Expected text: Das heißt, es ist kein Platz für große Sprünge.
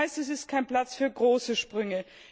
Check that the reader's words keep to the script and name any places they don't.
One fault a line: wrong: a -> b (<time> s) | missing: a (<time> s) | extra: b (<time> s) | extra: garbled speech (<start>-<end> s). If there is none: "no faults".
no faults